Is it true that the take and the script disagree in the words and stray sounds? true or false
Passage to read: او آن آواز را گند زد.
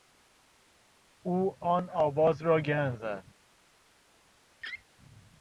true